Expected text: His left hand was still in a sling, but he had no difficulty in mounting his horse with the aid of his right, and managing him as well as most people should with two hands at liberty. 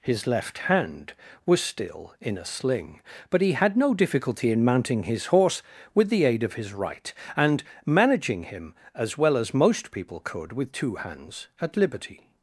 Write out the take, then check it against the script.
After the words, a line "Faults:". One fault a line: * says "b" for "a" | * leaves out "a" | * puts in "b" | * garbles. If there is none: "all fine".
His left hand was still in a sling, but he had no difficulty in mounting his horse with the aid of his right, and managing him as well as most people could with two hands at liberty.
Faults:
* says "could" for "should"